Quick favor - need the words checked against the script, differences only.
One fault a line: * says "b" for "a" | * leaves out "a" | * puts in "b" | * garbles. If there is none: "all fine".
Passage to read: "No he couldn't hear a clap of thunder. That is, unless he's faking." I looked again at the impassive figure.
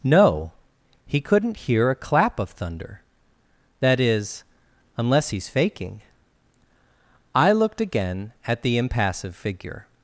all fine